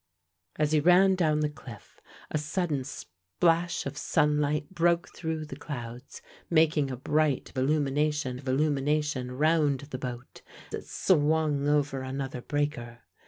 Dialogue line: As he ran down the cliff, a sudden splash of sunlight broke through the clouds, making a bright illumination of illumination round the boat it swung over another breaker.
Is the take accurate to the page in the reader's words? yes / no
yes